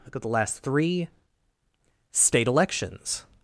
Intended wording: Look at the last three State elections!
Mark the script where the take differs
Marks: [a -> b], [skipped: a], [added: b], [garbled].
Look at the last three State elections!